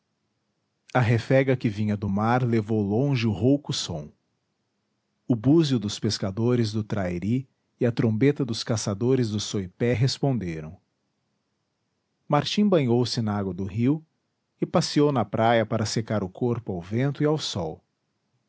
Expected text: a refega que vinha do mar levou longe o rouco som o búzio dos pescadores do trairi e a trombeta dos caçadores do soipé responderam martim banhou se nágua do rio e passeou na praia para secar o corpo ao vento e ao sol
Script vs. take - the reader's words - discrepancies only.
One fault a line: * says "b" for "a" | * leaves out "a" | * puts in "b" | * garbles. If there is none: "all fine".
all fine